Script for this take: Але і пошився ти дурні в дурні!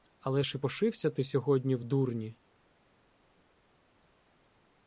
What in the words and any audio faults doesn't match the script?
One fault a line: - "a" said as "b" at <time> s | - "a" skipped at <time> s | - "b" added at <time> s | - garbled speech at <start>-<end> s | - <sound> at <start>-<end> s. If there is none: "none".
- "ж" added at 0.4 s
- "дурні" said as "сьогодні" at 1.2 s